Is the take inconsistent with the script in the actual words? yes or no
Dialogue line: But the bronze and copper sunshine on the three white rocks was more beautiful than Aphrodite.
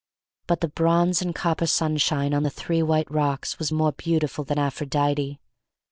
no